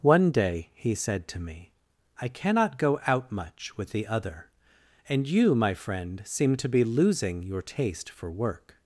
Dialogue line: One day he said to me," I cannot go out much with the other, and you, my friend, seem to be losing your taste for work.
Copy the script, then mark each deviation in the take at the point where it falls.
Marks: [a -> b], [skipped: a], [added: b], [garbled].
One day he said to me," I cannot go out much with the other, and you, my friend, seem to be losing your taste for work.